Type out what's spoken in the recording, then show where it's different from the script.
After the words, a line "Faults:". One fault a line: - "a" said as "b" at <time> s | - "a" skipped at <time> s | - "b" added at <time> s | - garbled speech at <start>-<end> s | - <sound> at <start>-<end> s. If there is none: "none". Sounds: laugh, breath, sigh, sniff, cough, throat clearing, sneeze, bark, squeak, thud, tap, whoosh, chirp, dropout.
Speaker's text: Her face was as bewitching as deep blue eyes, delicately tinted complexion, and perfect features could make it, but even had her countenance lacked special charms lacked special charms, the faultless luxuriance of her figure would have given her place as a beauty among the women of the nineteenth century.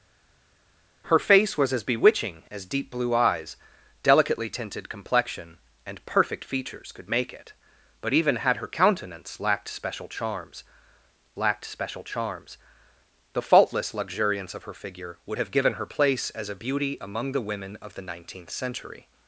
Her face was as bewitching as deep blue eyes, delicately tinted complexion, and perfect features could make it, but even had her countenance lacked special charms lacked special charms, the faultless luxuriance of her figure would have given her place as a beauty among the women of the nineteenth century.
Faults:
none